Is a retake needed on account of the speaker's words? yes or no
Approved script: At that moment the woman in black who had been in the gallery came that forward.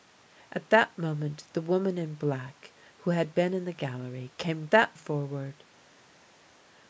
no